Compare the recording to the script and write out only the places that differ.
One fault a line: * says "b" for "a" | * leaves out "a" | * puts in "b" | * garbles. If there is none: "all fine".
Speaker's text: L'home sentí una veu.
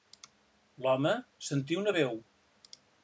all fine